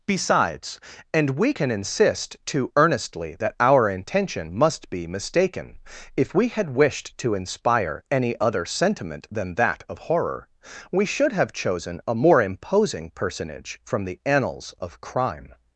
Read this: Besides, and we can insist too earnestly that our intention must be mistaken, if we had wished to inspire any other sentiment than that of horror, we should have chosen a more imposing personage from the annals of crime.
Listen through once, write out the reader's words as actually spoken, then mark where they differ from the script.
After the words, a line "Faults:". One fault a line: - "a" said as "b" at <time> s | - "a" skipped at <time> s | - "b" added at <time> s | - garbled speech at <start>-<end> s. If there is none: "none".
Besides, and we can insist too earnestly that our intention must be mistaken, if we had wished to inspire any other sentiment than that of horror, we should have chosen a more imposing personage from the annals of crime.
Faults:
none